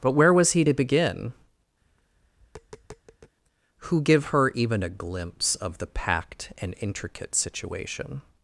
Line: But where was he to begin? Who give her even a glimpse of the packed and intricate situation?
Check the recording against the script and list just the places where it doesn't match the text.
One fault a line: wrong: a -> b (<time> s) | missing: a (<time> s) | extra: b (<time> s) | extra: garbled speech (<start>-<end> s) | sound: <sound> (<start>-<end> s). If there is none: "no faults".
sound: tap (1.8-3.4 s)